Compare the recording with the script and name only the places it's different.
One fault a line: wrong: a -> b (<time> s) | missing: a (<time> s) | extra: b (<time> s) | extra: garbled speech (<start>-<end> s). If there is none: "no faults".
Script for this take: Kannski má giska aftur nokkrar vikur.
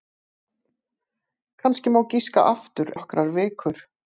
no faults